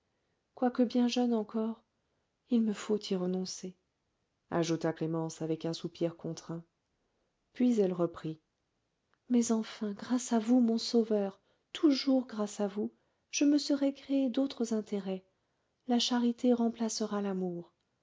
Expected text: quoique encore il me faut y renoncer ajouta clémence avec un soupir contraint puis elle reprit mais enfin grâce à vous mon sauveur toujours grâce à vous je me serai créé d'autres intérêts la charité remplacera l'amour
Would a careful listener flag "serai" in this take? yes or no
no